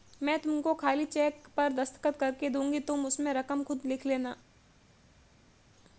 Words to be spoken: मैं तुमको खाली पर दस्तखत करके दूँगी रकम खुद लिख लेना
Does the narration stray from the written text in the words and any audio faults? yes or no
yes